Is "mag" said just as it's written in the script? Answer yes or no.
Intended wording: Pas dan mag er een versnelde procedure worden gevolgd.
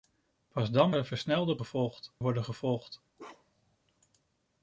no